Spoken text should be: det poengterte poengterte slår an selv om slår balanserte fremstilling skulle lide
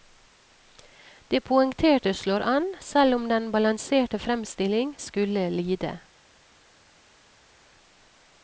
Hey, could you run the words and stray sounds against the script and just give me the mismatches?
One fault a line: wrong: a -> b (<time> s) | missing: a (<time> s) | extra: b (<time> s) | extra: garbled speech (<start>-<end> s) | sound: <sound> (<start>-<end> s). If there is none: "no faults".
missing: poengterte (2.1 s)
wrong: slår -> den (3.3 s)